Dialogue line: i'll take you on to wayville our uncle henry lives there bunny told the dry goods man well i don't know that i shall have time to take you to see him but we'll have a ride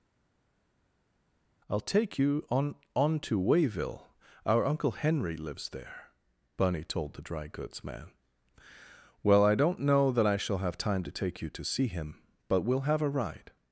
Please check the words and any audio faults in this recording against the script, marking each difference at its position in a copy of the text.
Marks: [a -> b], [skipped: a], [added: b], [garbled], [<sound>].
i'll take you on [added: on] to wayville our uncle henry lives there bunny told the dry goods man well i don't know that i shall have time to take you to see him but we'll have a ride